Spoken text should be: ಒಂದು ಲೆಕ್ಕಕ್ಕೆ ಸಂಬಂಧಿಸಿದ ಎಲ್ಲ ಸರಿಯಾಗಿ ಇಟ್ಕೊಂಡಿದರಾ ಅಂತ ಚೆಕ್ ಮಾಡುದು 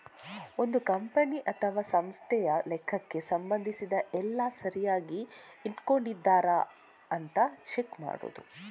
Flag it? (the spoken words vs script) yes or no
yes